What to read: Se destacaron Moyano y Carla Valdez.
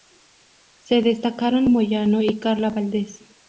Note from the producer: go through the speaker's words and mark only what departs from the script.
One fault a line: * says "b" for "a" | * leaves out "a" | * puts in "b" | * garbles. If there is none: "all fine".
all fine